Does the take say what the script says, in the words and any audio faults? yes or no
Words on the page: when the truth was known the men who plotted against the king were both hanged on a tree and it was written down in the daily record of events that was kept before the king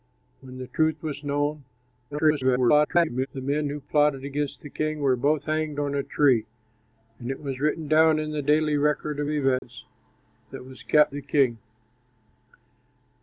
no